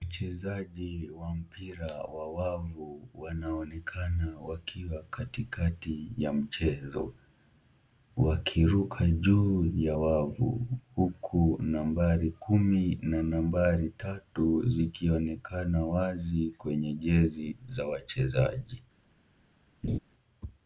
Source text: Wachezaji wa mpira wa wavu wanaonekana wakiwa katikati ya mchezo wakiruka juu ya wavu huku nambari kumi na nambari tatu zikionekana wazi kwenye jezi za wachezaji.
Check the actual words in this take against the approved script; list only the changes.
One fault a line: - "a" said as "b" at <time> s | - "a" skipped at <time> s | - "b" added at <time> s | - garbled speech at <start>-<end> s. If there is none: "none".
none